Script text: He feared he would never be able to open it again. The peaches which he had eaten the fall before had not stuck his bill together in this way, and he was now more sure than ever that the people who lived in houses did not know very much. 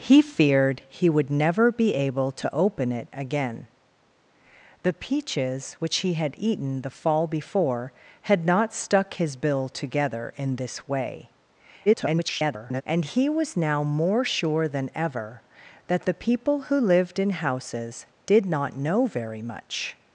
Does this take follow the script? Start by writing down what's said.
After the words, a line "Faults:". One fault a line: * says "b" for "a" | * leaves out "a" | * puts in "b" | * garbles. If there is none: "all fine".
He feared he would never be able to open it again. The peaches which he had eaten the fall before had not stuck his bill together in this way, [garbled] and he was now more sure than ever that the people who lived in houses did not know very much.
Faults:
* garbles